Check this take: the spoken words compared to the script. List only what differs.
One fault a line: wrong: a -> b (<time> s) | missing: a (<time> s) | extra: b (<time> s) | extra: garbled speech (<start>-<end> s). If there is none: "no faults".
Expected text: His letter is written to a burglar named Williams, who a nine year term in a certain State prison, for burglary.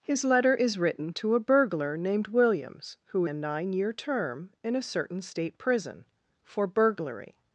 no faults